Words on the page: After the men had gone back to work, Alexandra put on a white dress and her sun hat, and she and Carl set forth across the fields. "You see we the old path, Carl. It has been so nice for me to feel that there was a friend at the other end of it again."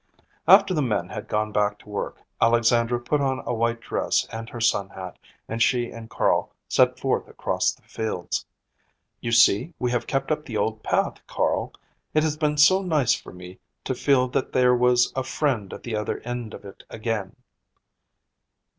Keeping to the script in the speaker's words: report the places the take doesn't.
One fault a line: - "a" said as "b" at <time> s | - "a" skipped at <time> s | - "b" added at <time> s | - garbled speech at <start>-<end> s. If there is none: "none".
- "have kept up" added at 9.9 s